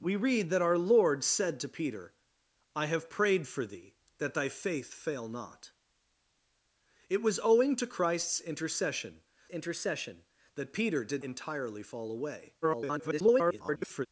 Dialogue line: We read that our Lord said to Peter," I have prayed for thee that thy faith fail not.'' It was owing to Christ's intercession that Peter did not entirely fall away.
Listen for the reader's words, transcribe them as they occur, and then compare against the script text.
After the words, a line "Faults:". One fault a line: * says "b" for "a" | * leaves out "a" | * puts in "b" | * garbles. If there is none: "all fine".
We read that our Lord said to Peter," I have prayed for thee that thy faith fail not.'' It was owing to Christ's intercession intercession that Peter did entirely fall away. [garbled]
Faults:
* puts in "intercession"
* leaves out "not"
* garbles